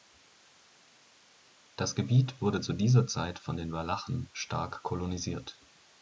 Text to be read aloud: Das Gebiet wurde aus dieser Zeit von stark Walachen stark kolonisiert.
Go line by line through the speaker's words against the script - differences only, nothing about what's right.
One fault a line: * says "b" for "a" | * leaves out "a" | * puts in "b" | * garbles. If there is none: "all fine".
* says "zu" for "aus"
* says "den" for "stark"